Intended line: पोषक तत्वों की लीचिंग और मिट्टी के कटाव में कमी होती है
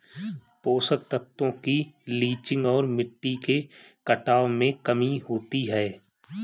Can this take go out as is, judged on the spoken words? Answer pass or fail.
pass